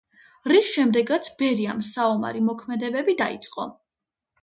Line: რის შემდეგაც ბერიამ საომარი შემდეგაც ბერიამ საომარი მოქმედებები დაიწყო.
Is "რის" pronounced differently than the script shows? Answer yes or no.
no